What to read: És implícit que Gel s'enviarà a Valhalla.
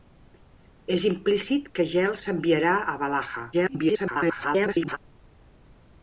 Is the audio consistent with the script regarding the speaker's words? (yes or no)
no